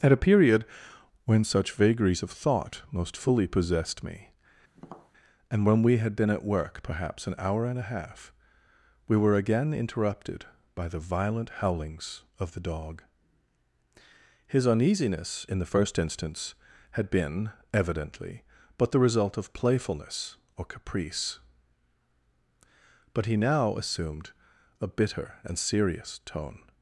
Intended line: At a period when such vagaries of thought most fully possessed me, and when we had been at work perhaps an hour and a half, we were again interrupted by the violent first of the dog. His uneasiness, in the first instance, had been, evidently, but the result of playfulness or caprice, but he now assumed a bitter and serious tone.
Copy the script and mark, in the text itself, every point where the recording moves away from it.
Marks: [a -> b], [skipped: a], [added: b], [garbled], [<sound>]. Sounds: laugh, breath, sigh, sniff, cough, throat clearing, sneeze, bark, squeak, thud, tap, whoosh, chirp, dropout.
At a period when such vagaries of thought most fully possessed me, [tap] and when we had been at work perhaps an hour and a half, we were again interrupted by the violent [first -> howlings] of the dog. His uneasiness, in the first instance, had been, evidently, but the result of playfulness or caprice, but he now assumed a bitter and serious tone.